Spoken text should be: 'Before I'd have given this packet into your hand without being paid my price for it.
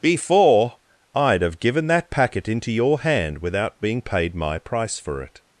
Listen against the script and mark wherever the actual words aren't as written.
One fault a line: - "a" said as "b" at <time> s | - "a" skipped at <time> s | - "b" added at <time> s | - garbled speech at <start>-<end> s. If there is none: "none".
- "this" said as "that" at 1.9 s